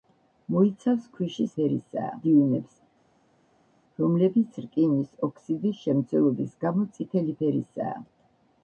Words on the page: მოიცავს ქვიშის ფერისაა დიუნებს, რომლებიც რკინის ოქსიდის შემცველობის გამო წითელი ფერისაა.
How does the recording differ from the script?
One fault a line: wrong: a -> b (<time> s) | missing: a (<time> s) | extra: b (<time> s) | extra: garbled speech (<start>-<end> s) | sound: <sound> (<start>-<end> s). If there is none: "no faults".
no faults